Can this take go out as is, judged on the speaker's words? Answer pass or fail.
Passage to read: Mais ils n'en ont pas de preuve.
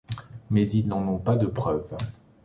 pass